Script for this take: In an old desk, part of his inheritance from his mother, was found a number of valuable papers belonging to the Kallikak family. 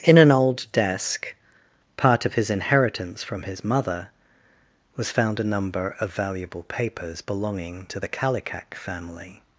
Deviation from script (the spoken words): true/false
false